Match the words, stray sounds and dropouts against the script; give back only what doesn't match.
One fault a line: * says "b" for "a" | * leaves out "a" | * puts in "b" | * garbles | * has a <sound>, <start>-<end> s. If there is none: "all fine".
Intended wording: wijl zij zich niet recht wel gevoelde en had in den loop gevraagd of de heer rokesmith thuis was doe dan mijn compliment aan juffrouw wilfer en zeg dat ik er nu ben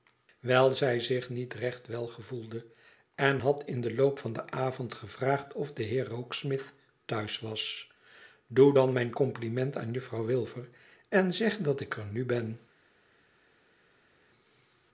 * puts in "van den avond"